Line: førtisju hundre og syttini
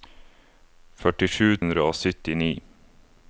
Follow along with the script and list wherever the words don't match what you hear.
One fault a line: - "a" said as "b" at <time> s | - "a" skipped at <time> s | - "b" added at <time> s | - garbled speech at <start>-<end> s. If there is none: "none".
none